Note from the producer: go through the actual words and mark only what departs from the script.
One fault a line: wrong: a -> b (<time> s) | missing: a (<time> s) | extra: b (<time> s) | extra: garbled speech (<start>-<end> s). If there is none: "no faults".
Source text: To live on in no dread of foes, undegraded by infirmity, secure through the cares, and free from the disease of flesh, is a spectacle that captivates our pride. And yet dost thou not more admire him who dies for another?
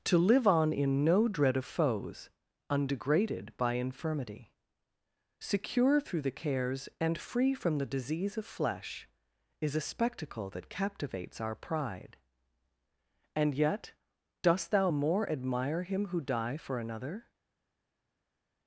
missing: not (14.9 s)
wrong: dies -> die (16.2 s)